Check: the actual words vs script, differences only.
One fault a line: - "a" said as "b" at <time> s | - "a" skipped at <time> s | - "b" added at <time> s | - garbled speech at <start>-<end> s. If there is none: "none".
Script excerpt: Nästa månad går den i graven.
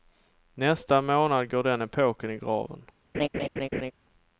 - "epoken" added at 1.8 s